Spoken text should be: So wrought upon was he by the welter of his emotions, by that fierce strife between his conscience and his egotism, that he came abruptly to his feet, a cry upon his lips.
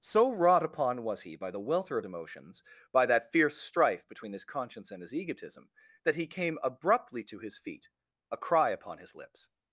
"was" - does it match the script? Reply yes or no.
yes